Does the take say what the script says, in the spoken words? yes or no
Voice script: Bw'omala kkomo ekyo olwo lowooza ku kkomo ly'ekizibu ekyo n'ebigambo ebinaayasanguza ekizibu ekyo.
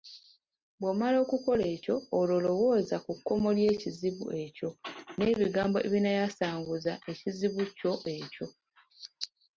no